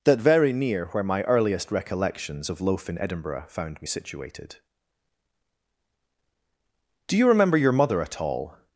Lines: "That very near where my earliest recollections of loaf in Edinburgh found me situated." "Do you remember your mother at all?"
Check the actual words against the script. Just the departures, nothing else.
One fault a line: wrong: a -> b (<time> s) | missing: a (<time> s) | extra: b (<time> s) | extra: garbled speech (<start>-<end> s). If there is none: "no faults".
no faults